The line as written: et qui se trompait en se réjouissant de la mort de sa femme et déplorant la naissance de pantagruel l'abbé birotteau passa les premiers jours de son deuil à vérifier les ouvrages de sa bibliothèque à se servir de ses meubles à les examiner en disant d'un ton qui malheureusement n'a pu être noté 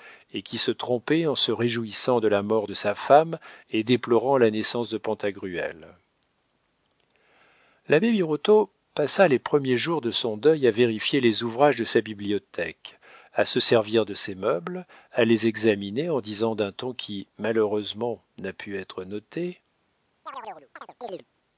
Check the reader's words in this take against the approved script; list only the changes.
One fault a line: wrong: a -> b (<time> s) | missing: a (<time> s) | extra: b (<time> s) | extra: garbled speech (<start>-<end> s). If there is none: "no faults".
no faults